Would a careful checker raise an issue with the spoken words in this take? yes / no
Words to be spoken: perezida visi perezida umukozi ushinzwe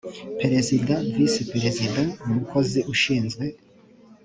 no